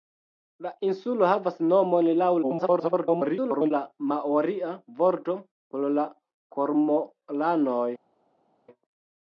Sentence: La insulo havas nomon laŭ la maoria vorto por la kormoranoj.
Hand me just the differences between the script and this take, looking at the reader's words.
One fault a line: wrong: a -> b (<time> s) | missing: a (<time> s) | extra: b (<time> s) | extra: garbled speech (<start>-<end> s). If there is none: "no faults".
extra: garbled speech (2.4-3.7 s)